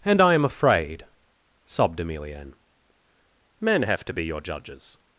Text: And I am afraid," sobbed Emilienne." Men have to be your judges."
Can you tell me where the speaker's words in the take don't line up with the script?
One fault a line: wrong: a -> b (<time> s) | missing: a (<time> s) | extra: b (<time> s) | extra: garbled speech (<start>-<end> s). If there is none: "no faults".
no faults